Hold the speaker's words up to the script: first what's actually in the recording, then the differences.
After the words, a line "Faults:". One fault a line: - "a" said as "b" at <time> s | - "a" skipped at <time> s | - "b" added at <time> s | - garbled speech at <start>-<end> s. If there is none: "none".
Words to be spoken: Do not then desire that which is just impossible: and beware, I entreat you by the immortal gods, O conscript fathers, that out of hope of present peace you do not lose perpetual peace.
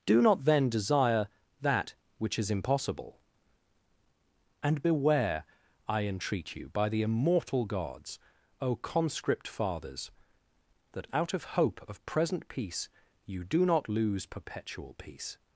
Do not then desire that which is impossible: and beware, I entreat you by the immortal gods, O conscript fathers, that out of hope of present peace you do not lose perpetual peace.
Faults:
- "just" skipped at 2.5 s